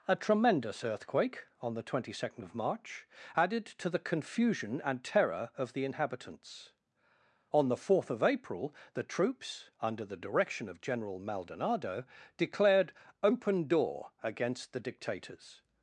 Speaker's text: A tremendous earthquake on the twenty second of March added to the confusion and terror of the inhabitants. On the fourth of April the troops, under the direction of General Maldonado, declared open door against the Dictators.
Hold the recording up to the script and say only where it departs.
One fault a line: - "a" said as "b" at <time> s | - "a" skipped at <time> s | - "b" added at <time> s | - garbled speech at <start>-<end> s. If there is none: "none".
none